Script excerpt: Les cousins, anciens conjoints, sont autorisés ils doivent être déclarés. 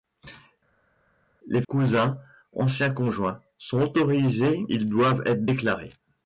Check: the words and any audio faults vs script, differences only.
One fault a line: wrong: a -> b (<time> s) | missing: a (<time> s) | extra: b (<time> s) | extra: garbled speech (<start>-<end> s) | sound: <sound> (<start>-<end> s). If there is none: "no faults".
no faults